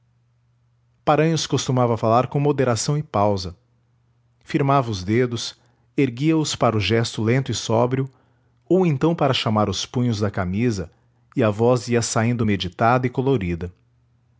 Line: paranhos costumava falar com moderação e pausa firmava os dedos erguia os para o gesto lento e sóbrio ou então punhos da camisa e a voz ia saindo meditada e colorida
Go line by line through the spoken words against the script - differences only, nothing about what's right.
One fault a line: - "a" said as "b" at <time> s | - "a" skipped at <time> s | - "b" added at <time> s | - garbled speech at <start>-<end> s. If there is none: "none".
- "para chamar os" added at 9.1 s